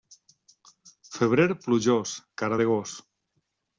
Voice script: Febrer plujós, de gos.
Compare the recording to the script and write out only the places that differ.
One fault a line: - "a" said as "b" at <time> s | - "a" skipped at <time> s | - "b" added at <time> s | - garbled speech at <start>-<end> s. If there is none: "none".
- "cara" added at 2.4 s